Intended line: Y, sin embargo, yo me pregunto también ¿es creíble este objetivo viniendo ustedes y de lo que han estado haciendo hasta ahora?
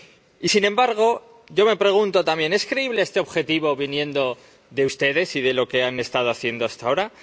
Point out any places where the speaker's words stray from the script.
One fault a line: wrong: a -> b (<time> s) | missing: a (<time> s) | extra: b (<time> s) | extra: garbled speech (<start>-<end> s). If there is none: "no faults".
extra: de (4.7 s)